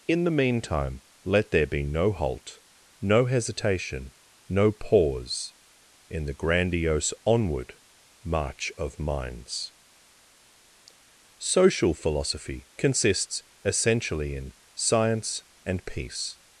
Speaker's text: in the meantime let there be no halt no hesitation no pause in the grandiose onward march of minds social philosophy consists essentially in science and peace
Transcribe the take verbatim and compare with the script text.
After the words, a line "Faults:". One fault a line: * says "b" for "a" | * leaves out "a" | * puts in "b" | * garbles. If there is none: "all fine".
in the meantime let there be no halt no hesitation no pause in the grandiose onward march of minds social philosophy consists essentially in science and peace
Faults:
all fine